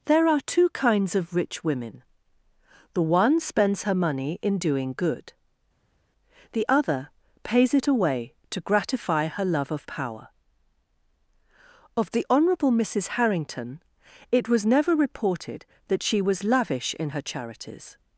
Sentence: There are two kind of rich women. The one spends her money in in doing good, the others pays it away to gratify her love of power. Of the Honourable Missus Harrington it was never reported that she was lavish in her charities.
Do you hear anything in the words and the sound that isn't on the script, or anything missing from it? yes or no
yes